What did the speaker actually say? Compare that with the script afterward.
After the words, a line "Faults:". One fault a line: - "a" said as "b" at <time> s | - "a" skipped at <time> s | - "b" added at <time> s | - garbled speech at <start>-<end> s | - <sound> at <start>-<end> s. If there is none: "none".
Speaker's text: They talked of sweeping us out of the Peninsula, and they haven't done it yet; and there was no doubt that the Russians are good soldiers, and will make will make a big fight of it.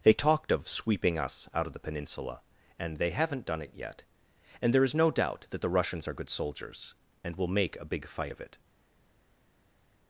They talked of sweeping us out of the Peninsula, and they haven't done it yet; and there is no doubt that the Russians are good soldiers, and will make a big fight of it.
Faults:
- "was" said as "is" at 4.8 s
- "will make" skipped at 7.8 s